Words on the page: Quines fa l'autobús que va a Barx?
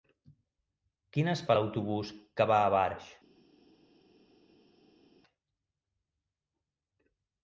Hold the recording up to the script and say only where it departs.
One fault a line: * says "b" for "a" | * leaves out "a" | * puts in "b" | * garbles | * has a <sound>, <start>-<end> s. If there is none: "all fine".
all fine